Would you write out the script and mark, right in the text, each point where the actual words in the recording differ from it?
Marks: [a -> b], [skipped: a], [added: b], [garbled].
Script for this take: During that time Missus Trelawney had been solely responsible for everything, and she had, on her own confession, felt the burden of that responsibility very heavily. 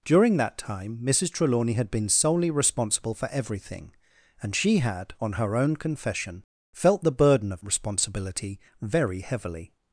During that time Missus Trelawney had been solely responsible for everything, and she had, on her own confession, felt the burden of [skipped: that] responsibility very heavily.